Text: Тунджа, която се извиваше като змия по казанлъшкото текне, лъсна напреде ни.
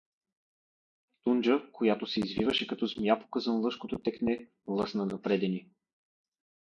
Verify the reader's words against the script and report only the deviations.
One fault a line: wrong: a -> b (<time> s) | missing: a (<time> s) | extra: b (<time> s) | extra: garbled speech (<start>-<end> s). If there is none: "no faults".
no faults